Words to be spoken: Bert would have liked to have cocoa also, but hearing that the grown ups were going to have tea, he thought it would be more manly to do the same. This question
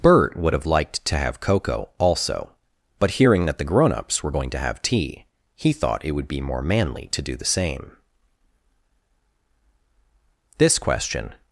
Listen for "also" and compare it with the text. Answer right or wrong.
right